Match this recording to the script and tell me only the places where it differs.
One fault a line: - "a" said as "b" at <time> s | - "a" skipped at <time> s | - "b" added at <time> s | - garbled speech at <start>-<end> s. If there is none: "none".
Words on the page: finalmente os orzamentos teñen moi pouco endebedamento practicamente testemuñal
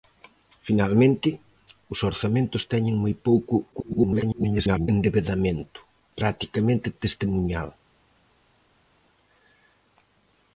- garbled speech at 3.7-4.9 s